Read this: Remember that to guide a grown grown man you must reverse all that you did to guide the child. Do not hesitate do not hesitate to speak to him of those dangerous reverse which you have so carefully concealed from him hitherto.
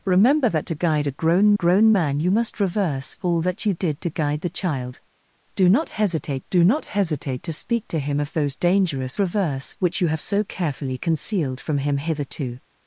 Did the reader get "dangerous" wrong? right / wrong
right